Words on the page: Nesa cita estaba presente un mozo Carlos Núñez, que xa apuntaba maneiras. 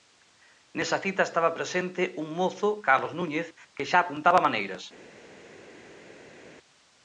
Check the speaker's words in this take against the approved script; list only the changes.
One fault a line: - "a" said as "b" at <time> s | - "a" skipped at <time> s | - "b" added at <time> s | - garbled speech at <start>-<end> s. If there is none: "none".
none